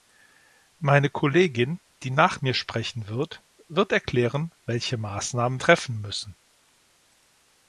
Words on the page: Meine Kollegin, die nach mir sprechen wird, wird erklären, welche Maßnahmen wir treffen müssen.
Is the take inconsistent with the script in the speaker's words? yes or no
yes